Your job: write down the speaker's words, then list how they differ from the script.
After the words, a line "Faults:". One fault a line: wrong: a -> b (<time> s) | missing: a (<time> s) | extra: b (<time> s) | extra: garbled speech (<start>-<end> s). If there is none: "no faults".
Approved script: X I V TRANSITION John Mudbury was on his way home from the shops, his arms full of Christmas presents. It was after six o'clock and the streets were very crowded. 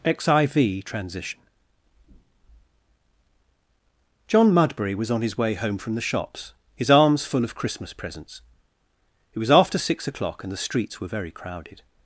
X I V TRANSITION John Mudbury was on his way home from the shops, his arms full of Christmas presents. It was after six o'clock and the streets were very crowded.
Faults:
no faults